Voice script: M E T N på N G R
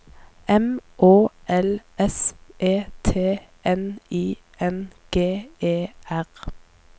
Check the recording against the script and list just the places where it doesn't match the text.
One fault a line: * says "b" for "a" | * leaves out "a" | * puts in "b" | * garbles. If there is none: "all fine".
* puts in "Å L S"
* says "I" for "på"
* puts in "E"